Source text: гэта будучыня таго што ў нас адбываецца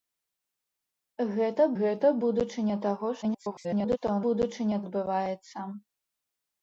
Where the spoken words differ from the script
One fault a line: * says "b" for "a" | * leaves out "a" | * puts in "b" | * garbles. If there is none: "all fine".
* puts in "гэта"
* garbles
* says "будучыня" for "нас"